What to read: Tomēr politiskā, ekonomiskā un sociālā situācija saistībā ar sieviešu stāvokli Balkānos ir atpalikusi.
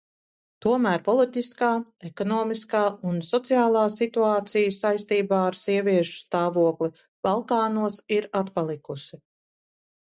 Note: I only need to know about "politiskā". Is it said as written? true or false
true